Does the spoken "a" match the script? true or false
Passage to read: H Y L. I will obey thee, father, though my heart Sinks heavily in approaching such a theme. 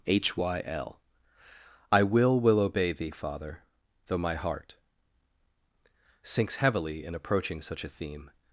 true